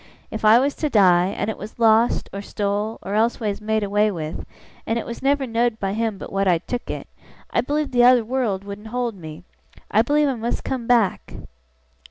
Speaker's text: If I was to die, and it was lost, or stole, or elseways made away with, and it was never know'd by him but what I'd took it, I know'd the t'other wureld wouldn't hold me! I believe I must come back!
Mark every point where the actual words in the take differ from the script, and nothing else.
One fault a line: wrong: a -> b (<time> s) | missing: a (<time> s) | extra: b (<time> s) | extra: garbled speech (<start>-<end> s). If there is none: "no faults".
wrong: know'd -> believe (7.6 s)